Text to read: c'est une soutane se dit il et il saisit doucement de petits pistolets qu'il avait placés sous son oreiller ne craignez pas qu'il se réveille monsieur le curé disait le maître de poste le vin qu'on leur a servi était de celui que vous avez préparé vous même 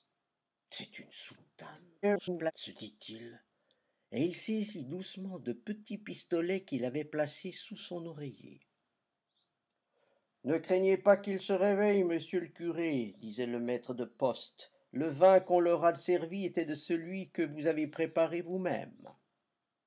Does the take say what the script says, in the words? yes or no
no